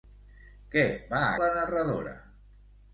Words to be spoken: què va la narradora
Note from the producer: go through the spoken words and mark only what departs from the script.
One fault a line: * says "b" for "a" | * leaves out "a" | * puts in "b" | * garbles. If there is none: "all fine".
all fine